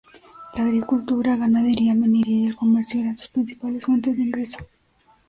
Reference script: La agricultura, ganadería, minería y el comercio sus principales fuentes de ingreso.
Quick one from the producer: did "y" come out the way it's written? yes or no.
yes